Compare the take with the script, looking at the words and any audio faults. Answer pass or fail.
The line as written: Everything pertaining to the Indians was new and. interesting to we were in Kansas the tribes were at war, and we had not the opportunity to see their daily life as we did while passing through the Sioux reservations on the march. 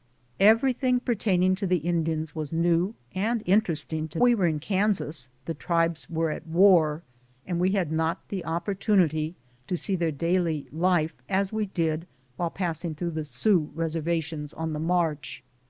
pass